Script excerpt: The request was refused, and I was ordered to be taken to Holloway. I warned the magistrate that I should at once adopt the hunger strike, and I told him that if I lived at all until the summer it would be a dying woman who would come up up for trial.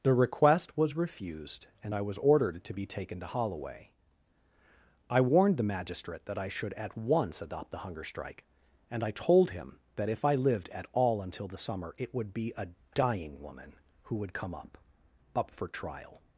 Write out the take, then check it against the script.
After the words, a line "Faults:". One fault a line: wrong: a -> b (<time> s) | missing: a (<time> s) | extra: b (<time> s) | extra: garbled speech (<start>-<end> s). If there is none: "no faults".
The request was refused, and I was ordered to be taken to Holloway. I warned the magistrate that I should at once adopt the hunger strike, and I told him that if I lived at all until the summer it would be a dying woman who would come up up for trial.
Faults:
no faults